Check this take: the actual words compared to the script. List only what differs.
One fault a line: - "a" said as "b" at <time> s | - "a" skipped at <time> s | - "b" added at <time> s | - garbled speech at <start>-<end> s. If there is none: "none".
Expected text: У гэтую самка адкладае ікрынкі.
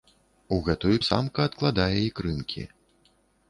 none